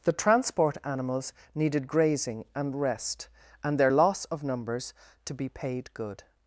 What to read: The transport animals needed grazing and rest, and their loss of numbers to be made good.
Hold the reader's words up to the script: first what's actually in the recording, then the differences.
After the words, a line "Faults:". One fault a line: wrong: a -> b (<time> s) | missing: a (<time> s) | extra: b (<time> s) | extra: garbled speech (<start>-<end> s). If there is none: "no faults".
The transport animals needed grazing and rest, and their loss of numbers to be paid good.
Faults:
wrong: made -> paid (5.5 s)